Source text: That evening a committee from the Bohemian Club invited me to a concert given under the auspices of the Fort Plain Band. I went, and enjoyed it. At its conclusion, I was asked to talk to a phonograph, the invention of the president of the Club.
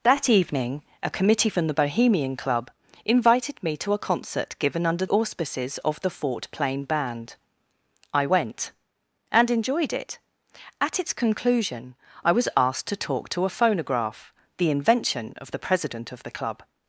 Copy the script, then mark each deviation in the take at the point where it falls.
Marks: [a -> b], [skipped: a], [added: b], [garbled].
That evening a committee from the Bohemian Club invited me to a concert given under [skipped: the] auspices of the Fort Plain Band. I went, and enjoyed it. At its conclusion, I was asked to talk to a phonograph, the invention of the president of the Club.